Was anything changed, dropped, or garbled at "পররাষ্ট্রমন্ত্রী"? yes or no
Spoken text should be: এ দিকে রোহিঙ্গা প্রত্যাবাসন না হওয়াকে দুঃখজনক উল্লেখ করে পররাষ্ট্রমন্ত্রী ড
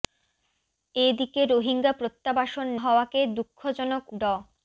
yes